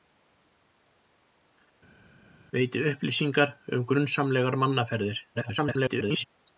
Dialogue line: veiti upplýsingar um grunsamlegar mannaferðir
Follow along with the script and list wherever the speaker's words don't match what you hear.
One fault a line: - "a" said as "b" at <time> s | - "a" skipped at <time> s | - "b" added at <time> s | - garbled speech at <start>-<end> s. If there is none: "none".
- garbled speech at 5.3-6.2 s